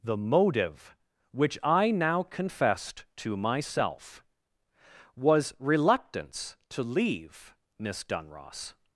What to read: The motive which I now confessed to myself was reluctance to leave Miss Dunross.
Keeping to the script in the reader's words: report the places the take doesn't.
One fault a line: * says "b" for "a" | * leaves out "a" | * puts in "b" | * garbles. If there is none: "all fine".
all fine